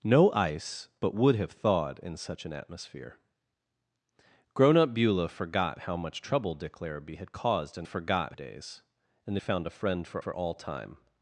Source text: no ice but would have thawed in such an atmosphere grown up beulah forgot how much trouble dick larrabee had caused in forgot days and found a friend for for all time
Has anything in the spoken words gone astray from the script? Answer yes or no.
no